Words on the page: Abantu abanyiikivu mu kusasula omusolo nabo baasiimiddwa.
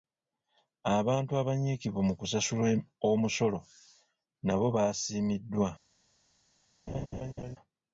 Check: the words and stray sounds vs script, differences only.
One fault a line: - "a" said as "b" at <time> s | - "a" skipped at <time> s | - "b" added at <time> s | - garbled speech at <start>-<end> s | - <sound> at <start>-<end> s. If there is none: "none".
- laugh at 6.9-7.6 s